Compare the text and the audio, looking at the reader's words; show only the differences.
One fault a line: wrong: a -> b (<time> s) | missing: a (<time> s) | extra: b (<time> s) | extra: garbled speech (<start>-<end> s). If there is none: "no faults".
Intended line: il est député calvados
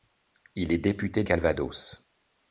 no faults